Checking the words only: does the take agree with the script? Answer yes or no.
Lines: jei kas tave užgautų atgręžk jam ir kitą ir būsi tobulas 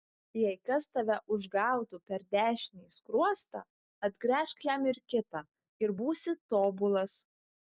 no